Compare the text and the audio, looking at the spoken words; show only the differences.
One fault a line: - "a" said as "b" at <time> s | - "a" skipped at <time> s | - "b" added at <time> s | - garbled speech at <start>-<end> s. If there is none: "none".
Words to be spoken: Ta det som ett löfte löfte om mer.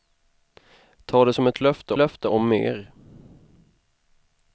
none